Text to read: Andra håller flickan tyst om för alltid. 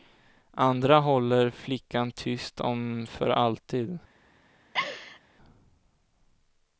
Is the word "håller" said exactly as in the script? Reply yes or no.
yes